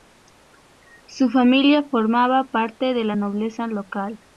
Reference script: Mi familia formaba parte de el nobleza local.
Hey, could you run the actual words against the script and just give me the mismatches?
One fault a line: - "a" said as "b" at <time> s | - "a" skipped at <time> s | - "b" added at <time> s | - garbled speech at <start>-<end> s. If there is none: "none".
- "Mi" said as "Su" at 1.1 s
- "el" said as "la" at 3.0 s